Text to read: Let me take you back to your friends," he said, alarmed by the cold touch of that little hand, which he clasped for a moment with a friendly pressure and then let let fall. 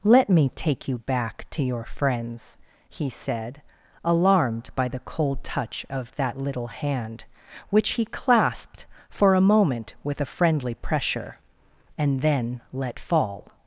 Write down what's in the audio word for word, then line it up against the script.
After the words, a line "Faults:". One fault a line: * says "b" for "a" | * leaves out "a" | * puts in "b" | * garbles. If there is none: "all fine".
Let me take you back to your friends," he said, alarmed by the cold touch of that little hand, which he clasped for a moment with a friendly pressure and then let fall.
Faults:
* leaves out "let"